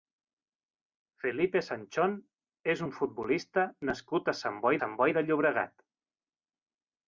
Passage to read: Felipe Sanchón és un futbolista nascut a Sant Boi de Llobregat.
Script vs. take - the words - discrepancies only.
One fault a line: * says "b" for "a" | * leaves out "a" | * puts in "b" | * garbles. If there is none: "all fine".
* puts in "Sant Boi"